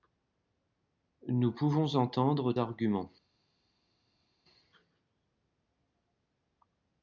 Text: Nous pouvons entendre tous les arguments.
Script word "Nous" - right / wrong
right